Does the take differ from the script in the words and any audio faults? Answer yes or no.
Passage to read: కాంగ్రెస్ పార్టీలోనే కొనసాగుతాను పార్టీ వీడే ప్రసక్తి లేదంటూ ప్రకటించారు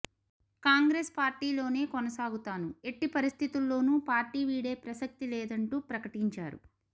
yes